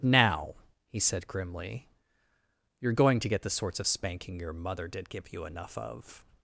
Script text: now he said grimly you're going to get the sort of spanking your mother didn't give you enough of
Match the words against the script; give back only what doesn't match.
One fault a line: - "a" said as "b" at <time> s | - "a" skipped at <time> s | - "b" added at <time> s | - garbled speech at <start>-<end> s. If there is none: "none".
- "sort" said as "sorts" at 3.5 s
- "didn't" said as "did" at 4.9 s